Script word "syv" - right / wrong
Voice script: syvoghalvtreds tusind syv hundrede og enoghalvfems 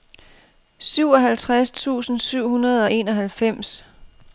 right